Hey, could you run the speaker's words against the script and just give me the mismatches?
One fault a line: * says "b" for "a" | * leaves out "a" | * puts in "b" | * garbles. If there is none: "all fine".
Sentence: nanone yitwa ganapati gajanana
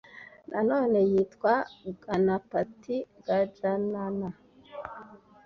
all fine